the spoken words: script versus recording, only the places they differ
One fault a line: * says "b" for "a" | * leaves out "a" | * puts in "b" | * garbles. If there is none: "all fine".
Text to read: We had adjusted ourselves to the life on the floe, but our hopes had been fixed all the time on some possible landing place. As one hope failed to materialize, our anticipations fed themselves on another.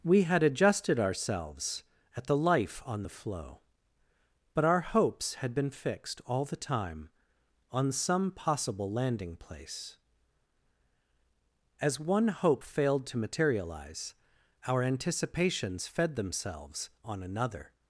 * says "at" for "to"